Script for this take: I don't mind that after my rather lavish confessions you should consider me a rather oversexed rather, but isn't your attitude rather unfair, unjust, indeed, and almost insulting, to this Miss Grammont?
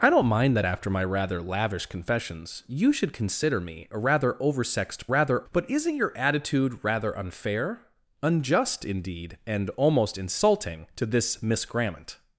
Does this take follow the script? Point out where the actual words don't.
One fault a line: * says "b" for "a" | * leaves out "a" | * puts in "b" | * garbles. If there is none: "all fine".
all fine